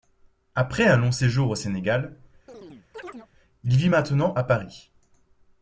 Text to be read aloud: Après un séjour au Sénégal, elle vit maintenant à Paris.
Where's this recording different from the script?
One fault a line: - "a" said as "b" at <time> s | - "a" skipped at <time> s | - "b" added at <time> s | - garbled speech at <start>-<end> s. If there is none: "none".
- "long" added at 1.0 s
- "elle" said as "il" at 3.6 s